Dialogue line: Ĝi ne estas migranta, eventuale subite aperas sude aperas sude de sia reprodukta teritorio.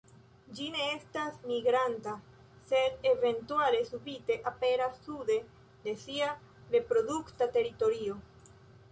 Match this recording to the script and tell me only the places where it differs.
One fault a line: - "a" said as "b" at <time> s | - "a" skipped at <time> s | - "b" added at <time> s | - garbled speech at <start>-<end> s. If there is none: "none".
- "sed" added at 2.7 s
- "aperas sude" skipped at 5.4 s